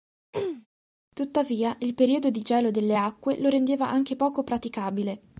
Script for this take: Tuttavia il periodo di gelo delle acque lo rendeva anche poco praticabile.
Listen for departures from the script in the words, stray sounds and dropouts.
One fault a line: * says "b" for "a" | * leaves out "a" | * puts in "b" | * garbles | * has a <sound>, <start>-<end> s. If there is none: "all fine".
* has a throat clearing, 0.3-0.7 s